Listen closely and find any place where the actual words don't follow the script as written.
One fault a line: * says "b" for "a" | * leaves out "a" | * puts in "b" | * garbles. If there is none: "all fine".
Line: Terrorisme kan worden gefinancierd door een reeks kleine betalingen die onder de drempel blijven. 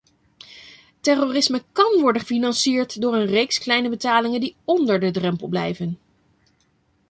all fine